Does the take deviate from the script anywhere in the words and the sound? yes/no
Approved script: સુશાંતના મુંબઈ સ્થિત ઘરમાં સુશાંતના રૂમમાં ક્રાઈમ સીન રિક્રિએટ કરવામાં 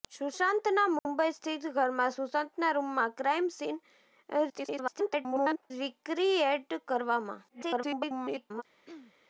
yes